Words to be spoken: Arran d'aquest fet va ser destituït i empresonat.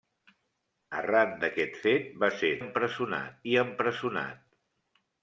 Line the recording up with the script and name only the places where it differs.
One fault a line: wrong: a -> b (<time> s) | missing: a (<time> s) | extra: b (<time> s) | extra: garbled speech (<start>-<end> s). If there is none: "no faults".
wrong: destituït -> empresonat (2.6 s)